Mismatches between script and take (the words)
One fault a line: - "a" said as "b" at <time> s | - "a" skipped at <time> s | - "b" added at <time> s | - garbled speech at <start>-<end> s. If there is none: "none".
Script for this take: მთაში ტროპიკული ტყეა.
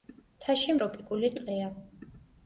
none